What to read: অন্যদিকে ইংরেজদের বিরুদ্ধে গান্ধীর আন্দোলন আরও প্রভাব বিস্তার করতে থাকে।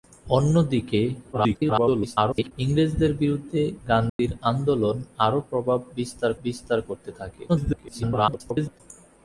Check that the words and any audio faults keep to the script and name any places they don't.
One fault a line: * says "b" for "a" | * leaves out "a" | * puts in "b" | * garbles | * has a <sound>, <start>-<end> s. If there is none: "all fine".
* garbles
* has a dropout, 4.1-4.2 s
* puts in "বিস্তার"
* garbles